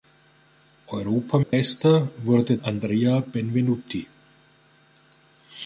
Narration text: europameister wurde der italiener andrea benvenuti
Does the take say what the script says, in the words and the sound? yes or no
no